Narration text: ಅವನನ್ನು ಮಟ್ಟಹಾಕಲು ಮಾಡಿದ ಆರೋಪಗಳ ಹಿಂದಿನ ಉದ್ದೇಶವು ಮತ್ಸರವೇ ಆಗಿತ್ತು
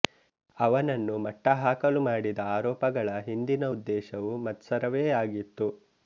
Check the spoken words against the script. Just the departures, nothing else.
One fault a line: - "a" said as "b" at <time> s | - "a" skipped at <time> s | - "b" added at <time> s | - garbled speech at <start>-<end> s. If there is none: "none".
none